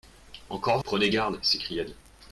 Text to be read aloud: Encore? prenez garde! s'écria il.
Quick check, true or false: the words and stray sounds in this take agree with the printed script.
true